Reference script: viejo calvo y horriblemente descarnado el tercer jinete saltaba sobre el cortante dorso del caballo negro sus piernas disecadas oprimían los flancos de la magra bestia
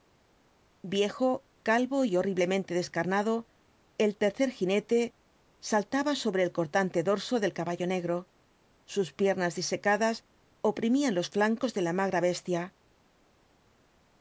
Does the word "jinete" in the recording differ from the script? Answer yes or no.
no